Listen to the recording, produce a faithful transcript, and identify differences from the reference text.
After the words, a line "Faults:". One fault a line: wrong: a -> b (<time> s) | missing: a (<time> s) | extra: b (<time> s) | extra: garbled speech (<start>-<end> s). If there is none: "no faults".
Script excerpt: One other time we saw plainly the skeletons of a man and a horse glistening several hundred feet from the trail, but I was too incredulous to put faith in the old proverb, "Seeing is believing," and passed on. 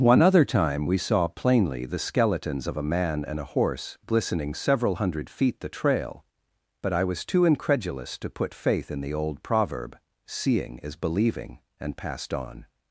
One other time we saw plainly the skeletons of a man and a horse glistening several hundred feet the trail, but I was too incredulous to put faith in the old proverb, "Seeing is believing," and passed on.
Faults:
missing: from (5.6 s)